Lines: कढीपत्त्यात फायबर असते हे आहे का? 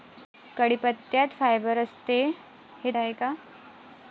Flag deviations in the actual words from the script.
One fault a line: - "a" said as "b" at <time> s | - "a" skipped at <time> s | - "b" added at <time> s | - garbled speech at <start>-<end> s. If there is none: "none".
none